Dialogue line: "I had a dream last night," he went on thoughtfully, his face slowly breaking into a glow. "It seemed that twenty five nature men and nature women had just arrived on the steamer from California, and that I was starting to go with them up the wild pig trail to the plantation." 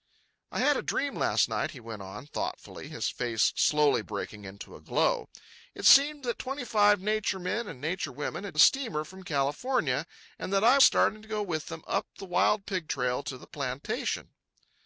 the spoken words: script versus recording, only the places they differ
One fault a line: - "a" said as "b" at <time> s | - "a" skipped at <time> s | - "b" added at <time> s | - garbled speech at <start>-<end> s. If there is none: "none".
- "just arrived on" skipped at 8.6 s
- "was" skipped at 10.8 s